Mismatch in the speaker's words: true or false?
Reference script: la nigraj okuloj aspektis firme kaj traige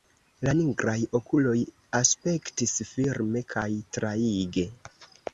false